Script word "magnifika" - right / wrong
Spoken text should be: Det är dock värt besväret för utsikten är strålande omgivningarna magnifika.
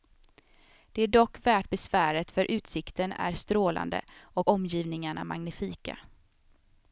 right